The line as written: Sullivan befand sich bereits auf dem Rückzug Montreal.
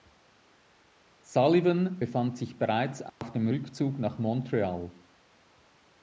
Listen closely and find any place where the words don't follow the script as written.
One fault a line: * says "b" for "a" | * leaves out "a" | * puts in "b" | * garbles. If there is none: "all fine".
* puts in "nach"